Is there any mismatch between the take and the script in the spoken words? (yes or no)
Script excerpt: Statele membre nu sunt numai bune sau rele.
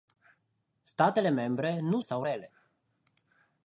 yes